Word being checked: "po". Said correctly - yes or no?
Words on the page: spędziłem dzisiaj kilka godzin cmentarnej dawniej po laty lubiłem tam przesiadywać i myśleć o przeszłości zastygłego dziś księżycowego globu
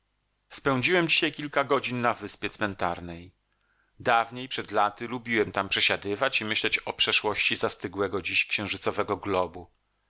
no